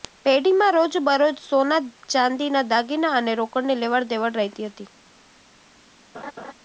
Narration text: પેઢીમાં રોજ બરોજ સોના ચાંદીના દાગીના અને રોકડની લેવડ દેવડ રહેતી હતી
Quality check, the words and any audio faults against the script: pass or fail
fail